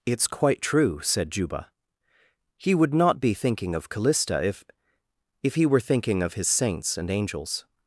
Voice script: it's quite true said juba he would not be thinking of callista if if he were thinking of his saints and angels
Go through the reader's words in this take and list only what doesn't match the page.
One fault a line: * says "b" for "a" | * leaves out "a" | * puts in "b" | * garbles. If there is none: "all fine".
all fine